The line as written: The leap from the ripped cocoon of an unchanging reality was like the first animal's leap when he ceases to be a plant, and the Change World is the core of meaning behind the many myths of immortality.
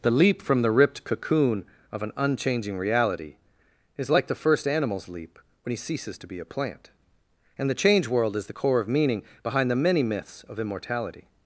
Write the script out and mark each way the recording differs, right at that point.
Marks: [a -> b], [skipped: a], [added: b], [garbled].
The leap from the ripped cocoon of an unchanging reality [was -> is] like the first animal's leap when he ceases to be a plant, and the Change World is the core of meaning behind the many myths of immortality.